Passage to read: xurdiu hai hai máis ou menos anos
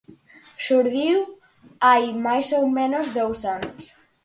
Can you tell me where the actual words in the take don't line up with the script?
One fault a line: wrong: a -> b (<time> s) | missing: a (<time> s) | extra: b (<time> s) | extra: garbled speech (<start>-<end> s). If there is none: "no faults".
missing: hai (2.0 s)
extra: dous (3.2 s)